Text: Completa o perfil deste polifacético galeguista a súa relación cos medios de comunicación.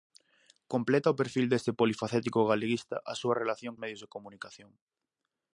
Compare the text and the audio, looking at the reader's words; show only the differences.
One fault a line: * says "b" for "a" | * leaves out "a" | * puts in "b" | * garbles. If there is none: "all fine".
* leaves out "cos"